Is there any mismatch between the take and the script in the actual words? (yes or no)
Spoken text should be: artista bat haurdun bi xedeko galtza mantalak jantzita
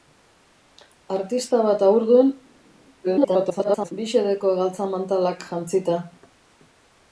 yes